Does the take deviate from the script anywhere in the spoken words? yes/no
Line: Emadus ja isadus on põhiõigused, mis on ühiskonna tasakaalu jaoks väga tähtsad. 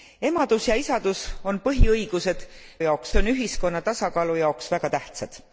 yes